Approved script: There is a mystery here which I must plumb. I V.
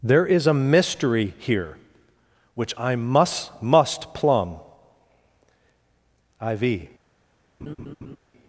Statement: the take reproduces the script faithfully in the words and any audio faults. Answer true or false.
false